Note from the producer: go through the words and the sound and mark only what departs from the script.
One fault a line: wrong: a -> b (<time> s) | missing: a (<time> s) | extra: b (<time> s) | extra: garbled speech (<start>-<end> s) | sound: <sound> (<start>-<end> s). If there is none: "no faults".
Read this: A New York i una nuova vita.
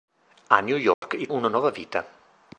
sound: dropout (0.9-1.0 s)